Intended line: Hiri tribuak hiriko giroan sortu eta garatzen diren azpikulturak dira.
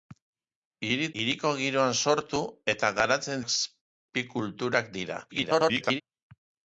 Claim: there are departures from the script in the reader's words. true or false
true